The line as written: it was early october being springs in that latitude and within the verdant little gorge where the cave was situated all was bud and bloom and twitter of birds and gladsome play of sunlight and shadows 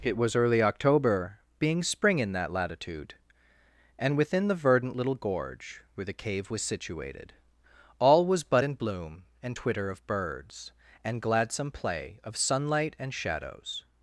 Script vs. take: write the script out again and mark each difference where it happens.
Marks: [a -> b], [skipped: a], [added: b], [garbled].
it was early october being [springs -> spring] in that latitude and within the verdant little gorge where the cave was situated all was bud and bloom and twitter of birds and gladsome play of sunlight and shadows